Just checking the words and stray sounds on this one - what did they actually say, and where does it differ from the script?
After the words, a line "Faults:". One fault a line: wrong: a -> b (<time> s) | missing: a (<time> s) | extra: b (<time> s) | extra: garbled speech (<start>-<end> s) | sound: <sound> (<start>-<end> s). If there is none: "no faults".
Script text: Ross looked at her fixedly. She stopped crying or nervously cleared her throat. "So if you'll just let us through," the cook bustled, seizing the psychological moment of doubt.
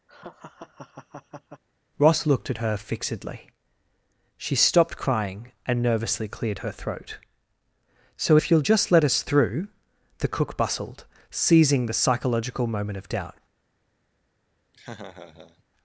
Ross looked at her fixedly. She stopped crying and nervously cleared her throat. "So if you'll just let us through," the cook bustled, seizing the psychological moment of doubt.
Faults:
sound: laugh (0.1-1.6 s)
wrong: or -> and (5.6 s)
sound: laugh (14.7-15.6 s)